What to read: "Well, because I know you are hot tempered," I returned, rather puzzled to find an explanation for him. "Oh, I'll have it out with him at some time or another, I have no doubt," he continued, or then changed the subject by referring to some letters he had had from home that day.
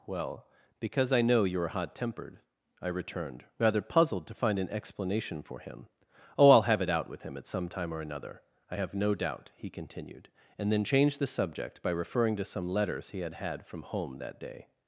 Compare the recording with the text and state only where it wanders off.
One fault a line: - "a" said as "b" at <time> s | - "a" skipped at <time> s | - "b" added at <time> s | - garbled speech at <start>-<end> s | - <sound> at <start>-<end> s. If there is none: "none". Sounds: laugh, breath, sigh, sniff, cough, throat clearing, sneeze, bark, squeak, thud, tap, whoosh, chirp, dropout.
- "or" said as "and" at 10.6 s